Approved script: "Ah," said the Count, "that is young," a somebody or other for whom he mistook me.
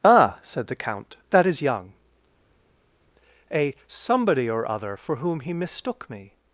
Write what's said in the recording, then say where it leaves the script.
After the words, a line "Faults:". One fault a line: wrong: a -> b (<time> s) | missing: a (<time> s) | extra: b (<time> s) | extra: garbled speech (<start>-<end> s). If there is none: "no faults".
"Ah," said the Count, "that is young," a somebody or other for whom he mistook me.
Faults:
no faults